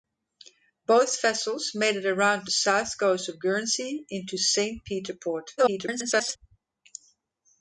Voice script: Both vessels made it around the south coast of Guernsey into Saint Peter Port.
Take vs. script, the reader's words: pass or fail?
fail